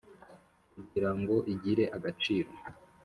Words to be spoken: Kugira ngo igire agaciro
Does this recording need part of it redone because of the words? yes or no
no